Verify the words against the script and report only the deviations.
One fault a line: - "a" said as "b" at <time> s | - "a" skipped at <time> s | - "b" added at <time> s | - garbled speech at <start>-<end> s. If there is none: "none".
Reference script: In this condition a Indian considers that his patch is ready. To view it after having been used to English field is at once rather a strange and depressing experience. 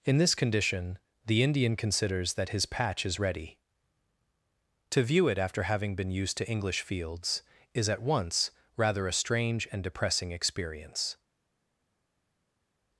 - "a" said as "the" at 1.3 s
- "field" said as "fields" at 6.8 s